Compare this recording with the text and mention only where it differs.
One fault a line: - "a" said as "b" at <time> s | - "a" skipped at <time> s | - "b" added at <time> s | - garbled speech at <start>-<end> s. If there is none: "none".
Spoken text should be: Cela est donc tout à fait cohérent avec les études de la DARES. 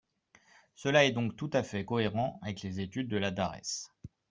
none